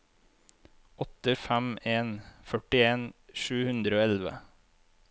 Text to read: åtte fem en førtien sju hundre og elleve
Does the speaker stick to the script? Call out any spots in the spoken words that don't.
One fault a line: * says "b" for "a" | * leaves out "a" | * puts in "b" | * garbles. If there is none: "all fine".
all fine